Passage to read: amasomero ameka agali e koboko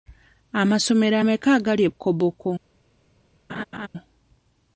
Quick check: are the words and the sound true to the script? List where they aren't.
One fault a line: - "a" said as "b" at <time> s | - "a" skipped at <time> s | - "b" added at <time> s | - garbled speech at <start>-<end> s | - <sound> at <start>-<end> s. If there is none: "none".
- laugh at 3.5-3.9 s